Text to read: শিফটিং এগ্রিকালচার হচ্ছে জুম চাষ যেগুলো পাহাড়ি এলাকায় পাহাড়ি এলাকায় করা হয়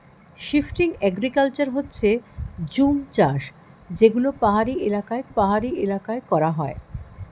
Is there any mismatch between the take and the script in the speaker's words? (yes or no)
no